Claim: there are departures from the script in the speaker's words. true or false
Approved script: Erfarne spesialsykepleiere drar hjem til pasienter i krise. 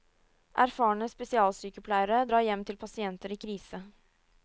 false